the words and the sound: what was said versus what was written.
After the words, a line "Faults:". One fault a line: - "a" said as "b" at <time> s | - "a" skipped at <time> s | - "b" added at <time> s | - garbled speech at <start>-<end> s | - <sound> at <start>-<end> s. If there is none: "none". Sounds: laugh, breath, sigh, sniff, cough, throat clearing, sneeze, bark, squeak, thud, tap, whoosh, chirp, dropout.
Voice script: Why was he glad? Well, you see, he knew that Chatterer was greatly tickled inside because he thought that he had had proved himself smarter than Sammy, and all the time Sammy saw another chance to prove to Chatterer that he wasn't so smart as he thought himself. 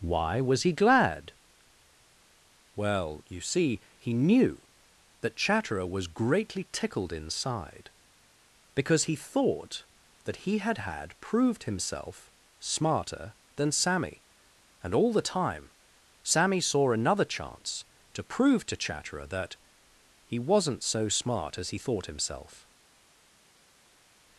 Why was he glad? Well, you see, he knew that Chatterer was greatly tickled inside because he thought that he had had proved himself smarter than Sammy, and all the time Sammy saw another chance to prove to Chatterer that he wasn't so smart as he thought himself.
Faults:
none